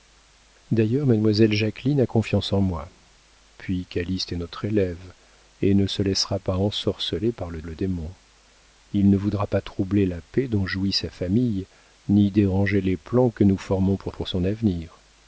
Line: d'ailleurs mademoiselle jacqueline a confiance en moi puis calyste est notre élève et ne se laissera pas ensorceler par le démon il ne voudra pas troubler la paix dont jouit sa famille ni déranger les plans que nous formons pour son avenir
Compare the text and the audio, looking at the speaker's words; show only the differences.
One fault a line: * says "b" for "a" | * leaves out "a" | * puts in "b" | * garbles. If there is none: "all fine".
* puts in "le"
* puts in "pour"